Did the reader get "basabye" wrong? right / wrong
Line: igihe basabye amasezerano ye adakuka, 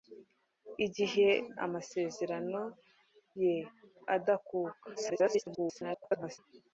wrong